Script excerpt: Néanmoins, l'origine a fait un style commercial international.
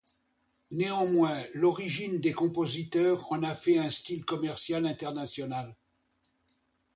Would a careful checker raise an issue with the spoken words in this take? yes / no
yes